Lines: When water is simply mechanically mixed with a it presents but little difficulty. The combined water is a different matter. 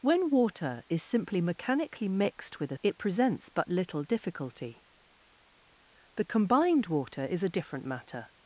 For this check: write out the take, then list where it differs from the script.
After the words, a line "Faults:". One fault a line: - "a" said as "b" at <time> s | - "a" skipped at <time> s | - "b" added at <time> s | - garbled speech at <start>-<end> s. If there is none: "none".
When water is simply mechanically mixed with a it presents but little difficulty. The combined water is a different matter.
Faults:
none